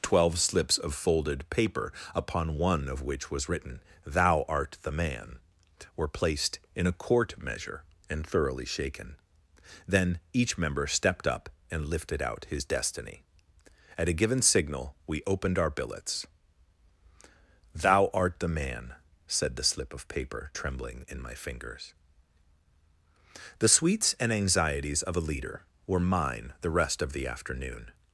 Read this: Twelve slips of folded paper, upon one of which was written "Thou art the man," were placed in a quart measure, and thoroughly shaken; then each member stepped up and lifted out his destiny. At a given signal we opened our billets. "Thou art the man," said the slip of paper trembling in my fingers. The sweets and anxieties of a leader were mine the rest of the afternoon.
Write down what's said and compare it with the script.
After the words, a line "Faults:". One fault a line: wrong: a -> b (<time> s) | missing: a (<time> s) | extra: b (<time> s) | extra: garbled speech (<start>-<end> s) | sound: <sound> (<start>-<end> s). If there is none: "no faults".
Twelve slips of folded paper, upon one of which was written "Thou art the man," were placed in a quart measure, and thoroughly shaken; then each member stepped up and lifted out his destiny. At a given signal we opened our billets. "Thou art the man," said the slip of paper trembling in my fingers. The sweets and anxieties of a leader were mine the rest of the afternoon.
Faults:
no faults